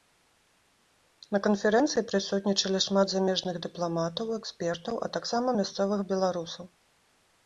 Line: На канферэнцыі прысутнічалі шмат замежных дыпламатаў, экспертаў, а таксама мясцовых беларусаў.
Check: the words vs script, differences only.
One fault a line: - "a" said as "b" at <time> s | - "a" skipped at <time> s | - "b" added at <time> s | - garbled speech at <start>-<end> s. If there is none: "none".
none